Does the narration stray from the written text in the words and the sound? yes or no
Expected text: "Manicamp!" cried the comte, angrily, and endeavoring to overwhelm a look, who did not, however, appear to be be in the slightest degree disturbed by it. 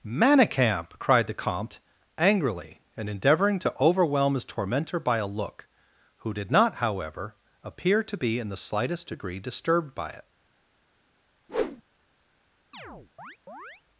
yes